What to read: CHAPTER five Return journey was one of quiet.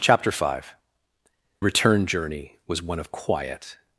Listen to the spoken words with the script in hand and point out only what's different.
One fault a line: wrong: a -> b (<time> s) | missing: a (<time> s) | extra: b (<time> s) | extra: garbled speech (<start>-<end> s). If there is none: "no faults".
no faults